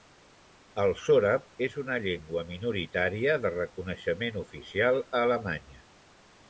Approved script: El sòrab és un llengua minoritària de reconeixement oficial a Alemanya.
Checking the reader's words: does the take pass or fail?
fail